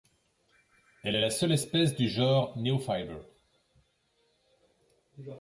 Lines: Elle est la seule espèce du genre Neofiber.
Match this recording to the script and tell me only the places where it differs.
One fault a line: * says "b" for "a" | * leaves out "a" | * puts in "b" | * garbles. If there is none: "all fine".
all fine